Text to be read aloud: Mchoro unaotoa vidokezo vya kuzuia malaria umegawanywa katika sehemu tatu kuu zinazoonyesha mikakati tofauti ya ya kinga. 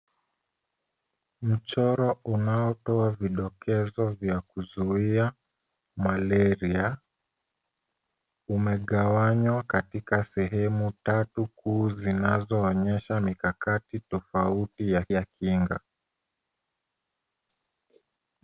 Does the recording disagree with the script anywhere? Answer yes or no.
no